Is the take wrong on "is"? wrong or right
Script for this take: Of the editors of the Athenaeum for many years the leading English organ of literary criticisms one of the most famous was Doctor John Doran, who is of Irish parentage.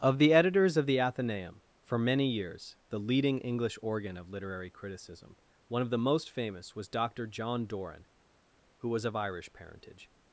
wrong